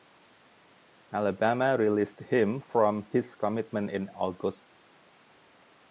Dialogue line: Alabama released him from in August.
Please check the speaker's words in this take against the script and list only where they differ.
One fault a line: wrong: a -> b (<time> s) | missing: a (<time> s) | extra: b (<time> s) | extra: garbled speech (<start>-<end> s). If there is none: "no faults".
extra: his commitment (3.1 s)